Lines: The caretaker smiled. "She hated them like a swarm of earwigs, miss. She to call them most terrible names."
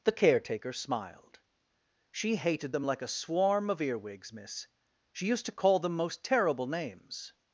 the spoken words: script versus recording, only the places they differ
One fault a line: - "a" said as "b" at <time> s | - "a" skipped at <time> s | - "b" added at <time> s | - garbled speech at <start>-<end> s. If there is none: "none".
- "used" added at 5.3 s